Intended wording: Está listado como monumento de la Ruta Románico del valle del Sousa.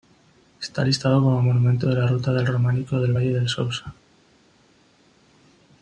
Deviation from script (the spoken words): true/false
true